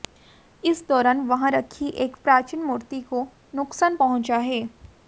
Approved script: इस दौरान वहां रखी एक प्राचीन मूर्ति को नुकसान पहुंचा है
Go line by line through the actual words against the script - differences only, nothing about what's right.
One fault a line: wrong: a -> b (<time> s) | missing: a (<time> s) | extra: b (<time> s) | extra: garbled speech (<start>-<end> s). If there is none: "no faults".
no faults